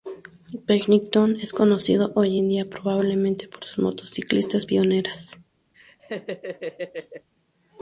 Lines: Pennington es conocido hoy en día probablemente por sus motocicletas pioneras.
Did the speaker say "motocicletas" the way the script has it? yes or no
yes